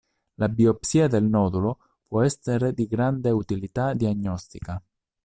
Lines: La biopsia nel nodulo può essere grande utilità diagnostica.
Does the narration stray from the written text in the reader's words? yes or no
yes